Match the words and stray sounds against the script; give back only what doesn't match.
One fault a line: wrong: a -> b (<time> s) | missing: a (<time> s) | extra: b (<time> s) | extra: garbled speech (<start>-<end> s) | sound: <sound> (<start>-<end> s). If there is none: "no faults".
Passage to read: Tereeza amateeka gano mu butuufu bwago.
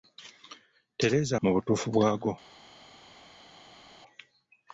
missing: amateeka gano (1.3 s)